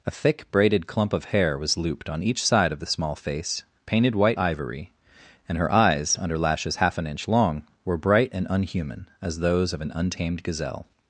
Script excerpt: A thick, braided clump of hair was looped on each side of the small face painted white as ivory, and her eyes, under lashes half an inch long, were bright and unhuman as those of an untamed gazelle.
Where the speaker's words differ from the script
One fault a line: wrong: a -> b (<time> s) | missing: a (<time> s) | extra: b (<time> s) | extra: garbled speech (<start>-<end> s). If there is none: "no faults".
missing: as (4.4 s)